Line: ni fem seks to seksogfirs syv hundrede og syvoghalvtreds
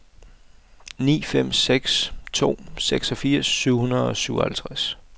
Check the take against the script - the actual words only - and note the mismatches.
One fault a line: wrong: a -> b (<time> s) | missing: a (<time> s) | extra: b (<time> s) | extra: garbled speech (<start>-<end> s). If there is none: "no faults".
no faults